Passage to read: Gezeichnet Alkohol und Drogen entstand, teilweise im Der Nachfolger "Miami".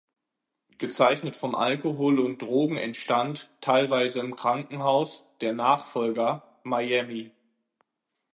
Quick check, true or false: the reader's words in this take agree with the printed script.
false